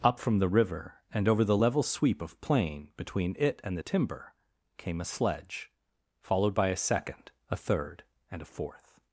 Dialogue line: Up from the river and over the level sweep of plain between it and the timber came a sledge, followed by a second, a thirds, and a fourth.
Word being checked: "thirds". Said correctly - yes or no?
no